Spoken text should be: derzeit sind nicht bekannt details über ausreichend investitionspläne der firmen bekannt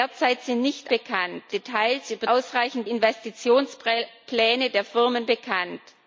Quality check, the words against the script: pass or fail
pass